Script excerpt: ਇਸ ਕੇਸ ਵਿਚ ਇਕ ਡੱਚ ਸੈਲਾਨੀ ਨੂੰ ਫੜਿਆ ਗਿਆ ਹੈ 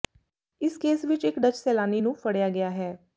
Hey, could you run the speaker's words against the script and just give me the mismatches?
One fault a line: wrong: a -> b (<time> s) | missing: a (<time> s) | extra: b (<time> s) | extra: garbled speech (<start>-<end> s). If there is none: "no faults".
no faults